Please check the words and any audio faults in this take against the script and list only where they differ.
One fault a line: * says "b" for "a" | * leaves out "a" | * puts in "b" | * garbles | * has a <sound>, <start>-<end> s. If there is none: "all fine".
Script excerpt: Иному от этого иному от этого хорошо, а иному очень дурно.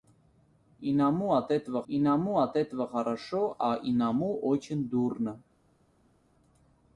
all fine